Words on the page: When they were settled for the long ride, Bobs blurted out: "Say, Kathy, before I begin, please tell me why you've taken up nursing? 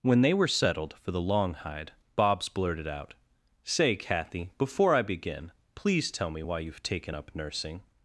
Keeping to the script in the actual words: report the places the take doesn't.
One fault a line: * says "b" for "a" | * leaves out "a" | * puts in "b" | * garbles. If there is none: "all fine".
* says "hide" for "ride"